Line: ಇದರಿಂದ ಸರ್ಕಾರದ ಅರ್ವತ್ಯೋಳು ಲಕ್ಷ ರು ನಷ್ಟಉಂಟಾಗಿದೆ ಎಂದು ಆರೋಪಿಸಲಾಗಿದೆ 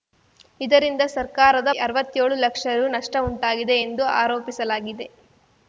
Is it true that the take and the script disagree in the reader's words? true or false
false